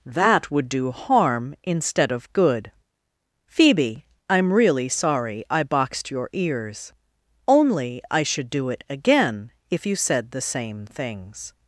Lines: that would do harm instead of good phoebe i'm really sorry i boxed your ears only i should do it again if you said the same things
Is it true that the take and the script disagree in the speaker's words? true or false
false